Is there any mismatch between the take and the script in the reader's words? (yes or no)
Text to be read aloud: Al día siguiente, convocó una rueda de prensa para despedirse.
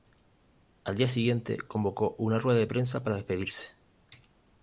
no